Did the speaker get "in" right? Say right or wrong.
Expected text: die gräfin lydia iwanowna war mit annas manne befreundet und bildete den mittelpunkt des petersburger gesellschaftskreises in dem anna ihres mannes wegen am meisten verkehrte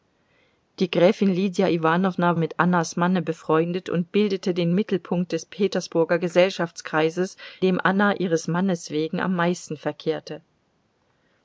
wrong